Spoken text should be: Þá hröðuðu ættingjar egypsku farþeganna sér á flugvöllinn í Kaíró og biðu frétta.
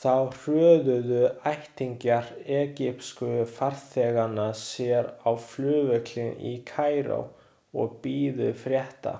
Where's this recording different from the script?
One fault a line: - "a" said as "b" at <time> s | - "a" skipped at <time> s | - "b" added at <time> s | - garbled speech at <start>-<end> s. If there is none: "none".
none